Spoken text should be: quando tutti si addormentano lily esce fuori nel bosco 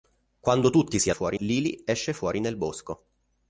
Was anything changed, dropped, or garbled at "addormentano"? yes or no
yes